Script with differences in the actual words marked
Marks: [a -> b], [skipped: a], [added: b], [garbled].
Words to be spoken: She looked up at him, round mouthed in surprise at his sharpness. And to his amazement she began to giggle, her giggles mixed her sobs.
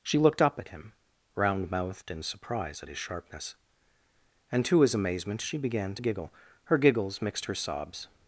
She looked up at him, round mouthed in surprise at his sharpness. And to his amazement she began to giggle, her giggles mixed her sobs.